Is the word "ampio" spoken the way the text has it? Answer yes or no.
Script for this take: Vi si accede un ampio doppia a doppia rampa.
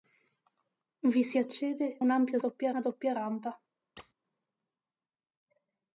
yes